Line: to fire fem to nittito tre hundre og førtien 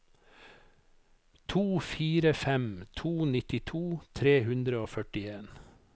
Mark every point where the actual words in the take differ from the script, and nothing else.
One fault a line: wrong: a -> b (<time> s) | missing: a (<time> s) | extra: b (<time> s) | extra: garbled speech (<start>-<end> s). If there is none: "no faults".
no faults